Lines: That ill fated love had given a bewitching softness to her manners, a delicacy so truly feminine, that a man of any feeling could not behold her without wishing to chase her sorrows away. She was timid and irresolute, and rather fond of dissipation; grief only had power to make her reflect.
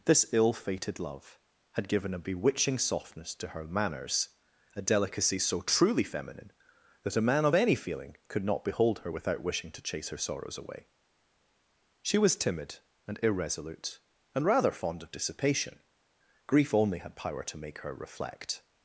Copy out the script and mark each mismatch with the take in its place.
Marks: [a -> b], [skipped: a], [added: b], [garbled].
[That -> This] ill fated love had given a bewitching softness to her manners, a delicacy so truly feminine, that a man of any feeling could not behold her without wishing to chase her sorrows away. She was timid and irresolute, and rather fond of dissipation; grief only had power to make her reflect.